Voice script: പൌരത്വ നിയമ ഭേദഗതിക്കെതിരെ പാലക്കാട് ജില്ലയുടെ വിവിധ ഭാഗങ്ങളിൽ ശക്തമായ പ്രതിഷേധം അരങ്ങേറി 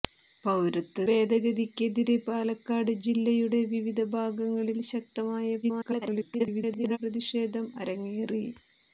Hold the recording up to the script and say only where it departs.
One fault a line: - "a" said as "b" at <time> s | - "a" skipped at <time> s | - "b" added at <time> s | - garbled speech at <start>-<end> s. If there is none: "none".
- "നിയമ" skipped at 1.0 s
- garbled speech at 5.6-7.0 s